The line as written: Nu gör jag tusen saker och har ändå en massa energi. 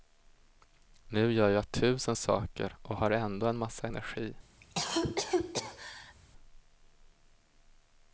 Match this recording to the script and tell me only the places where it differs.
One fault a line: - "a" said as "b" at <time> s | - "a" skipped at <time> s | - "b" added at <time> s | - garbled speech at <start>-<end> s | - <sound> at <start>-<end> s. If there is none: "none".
- cough at 4.6-6.1 s